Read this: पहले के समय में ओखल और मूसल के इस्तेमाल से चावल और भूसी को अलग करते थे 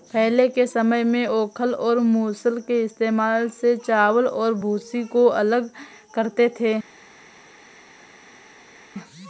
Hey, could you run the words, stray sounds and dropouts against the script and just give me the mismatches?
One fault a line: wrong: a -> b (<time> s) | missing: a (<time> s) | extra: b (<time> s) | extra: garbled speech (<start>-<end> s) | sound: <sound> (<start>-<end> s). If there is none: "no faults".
no faults